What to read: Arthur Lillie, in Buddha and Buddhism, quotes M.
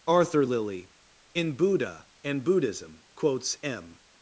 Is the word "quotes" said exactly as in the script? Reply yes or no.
yes